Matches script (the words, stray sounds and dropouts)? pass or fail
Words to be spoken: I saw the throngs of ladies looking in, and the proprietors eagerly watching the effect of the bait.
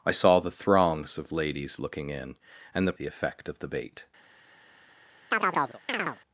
fail